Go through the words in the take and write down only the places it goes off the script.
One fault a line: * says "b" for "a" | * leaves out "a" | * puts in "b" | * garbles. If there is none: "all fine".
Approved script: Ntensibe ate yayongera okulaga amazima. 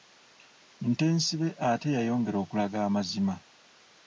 all fine